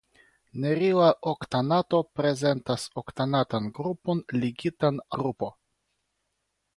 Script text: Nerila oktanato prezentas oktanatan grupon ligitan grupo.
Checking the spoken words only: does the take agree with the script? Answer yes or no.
yes